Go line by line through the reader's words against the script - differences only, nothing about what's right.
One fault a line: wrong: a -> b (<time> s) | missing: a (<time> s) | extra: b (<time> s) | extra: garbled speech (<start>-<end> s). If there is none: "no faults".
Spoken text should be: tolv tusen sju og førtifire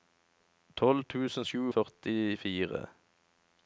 no faults